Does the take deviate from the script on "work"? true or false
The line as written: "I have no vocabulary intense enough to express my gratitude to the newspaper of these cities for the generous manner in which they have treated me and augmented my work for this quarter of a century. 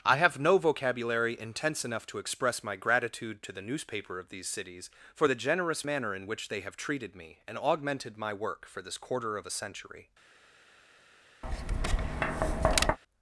false